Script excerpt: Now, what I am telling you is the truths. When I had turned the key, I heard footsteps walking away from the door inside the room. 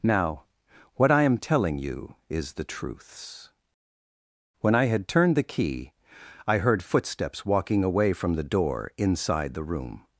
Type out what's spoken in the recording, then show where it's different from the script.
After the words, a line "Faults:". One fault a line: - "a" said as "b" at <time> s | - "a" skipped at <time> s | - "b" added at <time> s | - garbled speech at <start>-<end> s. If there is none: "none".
Now, what I am telling you is the truths. When I had turned the key, I heard footsteps walking away from the door inside the room.
Faults:
none